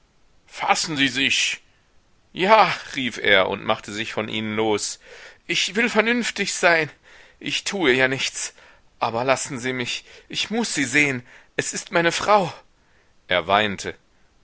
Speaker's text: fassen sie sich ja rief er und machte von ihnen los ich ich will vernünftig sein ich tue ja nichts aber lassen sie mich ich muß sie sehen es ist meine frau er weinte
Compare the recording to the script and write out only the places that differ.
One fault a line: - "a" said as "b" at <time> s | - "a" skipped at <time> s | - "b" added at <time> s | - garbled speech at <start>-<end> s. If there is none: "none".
- "sich" added at 3.9 s
- "ich" skipped at 5.7 s